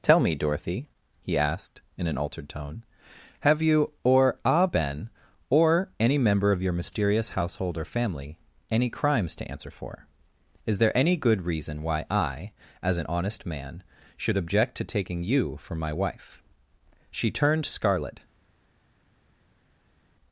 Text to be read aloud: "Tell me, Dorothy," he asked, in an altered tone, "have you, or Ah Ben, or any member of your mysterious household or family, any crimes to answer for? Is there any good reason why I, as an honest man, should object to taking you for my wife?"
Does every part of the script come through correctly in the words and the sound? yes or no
no